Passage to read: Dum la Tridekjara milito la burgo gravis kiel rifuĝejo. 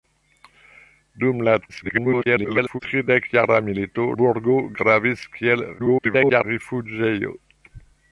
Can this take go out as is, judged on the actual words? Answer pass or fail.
fail